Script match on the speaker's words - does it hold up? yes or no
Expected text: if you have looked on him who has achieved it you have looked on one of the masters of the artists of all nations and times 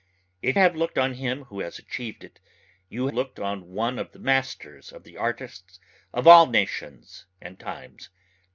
no